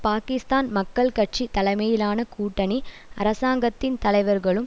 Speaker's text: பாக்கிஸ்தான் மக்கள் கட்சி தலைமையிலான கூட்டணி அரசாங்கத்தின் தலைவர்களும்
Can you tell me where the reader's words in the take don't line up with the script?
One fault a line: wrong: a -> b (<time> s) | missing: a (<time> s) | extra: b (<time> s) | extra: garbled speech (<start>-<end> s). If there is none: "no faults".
no faults